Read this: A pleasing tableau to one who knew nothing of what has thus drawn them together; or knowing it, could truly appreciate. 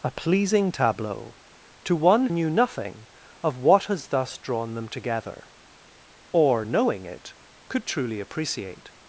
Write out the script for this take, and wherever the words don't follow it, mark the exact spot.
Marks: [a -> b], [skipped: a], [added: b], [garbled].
A pleasing tableau to one [skipped: who] knew nothing of what has thus drawn them together; or knowing it, could truly appreciate.